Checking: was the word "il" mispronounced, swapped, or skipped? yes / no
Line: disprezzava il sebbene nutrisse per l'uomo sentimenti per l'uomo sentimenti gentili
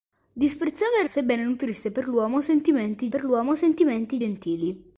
no